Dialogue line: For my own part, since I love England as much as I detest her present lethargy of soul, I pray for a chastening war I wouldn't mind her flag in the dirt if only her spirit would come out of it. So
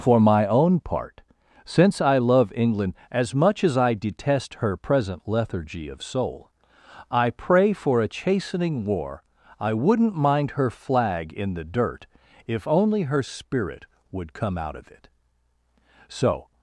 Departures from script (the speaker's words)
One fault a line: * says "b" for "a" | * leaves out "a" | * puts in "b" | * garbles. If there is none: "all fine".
all fine